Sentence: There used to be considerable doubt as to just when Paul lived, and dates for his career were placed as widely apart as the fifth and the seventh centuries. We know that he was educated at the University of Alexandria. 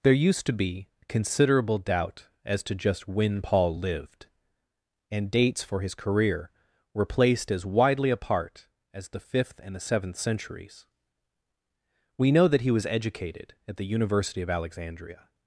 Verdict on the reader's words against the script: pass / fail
pass